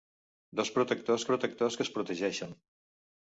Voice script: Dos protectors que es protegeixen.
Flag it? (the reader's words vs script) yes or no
yes